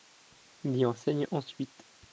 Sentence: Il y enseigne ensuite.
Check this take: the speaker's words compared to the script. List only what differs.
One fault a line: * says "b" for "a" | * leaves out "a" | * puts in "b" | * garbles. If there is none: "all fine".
all fine